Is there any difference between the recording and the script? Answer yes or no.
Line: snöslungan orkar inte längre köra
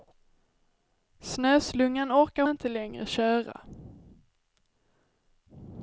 no